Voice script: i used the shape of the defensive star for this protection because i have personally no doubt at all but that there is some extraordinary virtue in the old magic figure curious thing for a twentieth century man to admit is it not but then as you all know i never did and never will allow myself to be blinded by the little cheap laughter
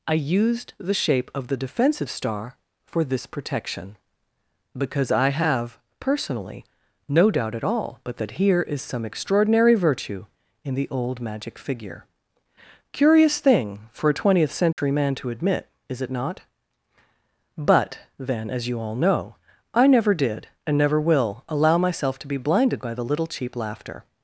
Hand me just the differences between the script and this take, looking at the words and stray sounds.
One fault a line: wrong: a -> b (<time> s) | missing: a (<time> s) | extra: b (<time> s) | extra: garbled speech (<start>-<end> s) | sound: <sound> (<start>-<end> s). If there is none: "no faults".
wrong: there -> here (8.3 s)
sound: dropout (14.7-14.8 s)